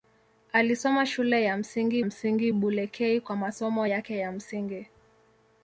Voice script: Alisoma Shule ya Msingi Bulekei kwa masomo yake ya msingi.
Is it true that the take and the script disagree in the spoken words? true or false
true